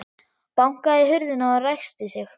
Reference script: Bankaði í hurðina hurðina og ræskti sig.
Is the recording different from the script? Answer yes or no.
yes